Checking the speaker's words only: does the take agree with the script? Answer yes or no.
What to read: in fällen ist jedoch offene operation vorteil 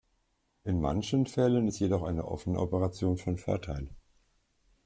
no